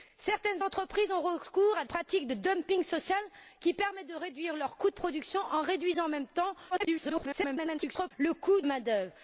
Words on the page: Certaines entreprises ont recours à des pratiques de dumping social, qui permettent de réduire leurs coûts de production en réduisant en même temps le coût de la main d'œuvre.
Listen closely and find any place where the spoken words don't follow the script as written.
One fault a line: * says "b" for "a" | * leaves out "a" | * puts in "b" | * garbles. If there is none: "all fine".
* leaves out "des"
* garbles
* leaves out "de"